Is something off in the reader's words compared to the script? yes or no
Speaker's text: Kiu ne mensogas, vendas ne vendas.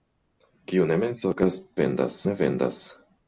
no